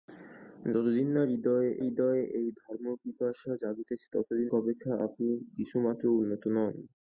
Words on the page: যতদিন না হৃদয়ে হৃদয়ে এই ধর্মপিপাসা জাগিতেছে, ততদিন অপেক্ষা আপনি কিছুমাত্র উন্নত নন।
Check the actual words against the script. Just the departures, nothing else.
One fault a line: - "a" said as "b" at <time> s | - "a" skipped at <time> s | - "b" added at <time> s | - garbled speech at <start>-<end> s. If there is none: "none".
none